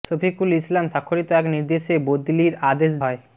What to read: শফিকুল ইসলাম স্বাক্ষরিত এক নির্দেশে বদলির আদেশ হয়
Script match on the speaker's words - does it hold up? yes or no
yes